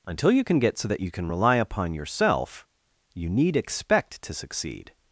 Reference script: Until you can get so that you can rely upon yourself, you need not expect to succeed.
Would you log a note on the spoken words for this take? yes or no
yes